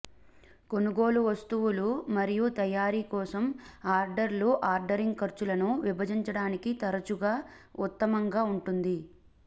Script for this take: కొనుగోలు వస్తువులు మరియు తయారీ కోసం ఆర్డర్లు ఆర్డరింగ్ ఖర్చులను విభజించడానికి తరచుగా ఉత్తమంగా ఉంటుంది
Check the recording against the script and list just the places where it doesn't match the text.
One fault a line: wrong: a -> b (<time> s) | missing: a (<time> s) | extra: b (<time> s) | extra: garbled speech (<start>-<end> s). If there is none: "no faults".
no faults